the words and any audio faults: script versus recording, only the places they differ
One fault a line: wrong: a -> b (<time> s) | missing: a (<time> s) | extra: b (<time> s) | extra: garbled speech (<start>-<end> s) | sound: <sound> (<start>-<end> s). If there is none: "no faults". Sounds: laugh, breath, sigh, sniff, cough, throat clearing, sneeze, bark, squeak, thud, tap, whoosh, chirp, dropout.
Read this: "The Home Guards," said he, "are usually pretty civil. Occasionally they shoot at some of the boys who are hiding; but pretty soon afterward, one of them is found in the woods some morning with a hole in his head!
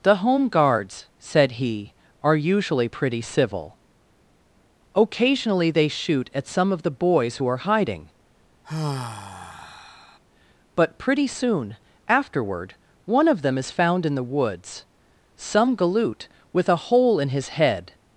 sound: sigh (8.6-10.2 s)
wrong: morning -> galoot (15.8 s)